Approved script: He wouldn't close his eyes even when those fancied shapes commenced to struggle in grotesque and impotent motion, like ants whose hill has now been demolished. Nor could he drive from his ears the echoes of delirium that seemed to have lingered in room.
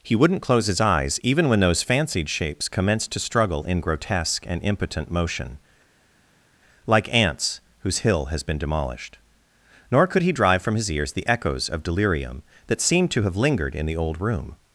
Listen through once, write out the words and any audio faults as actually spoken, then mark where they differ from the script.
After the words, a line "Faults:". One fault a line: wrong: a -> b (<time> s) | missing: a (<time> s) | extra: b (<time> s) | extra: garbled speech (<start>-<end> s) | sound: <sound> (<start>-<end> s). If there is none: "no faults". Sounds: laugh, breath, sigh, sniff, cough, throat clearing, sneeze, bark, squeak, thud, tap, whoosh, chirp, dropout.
He wouldn't close his eyes even when those fancied shapes commenced to struggle in grotesque and impotent motion, like ants whose hill has been demolished. Nor could he drive from his ears the echoes of delirium that seemed to have lingered in the old room.
Faults:
missing: now (8.4 s)
extra: the old (13.8 s)